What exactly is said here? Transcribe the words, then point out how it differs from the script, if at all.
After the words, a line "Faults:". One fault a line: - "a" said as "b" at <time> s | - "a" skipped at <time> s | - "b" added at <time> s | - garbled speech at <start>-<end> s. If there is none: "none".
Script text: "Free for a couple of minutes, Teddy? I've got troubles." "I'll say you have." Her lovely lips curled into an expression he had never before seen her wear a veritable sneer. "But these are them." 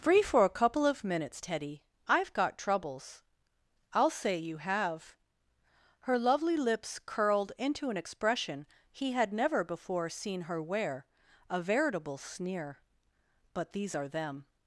"Free for a couple of minutes, Teddy? I've got troubles." "I'll say you have." Her lovely lips curled into an expression he had never before seen her wear a veritable sneer. "But these are them."
Faults:
none